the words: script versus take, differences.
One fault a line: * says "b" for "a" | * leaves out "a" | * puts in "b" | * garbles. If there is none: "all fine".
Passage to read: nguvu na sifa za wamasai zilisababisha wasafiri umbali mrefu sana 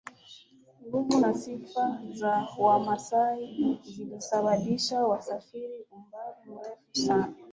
all fine